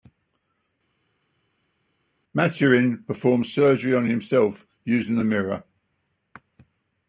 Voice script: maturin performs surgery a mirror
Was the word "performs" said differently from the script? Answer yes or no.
no